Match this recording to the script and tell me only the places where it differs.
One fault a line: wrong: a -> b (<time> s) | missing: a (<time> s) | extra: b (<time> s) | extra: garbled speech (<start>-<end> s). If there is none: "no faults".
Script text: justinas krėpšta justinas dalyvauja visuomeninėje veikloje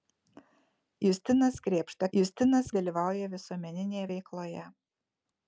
no faults